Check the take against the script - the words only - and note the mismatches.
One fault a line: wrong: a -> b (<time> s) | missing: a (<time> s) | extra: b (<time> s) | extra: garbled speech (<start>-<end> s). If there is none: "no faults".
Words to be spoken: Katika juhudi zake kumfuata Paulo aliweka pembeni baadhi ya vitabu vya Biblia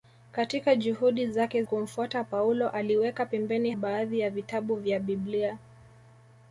no faults